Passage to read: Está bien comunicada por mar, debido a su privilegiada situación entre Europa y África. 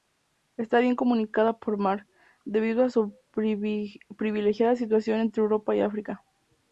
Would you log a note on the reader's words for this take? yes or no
no